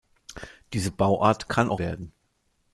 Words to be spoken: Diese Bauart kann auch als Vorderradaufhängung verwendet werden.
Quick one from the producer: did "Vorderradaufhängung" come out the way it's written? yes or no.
no